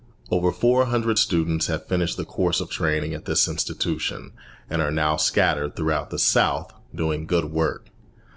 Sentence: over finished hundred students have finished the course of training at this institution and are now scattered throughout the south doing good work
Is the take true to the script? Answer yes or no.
no